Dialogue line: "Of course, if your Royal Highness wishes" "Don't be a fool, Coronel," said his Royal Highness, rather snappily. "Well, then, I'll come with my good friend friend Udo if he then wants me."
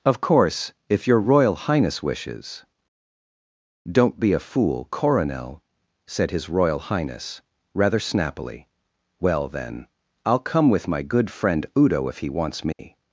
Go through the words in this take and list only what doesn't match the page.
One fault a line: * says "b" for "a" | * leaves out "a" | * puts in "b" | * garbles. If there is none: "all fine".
* leaves out "friend"
* leaves out "then"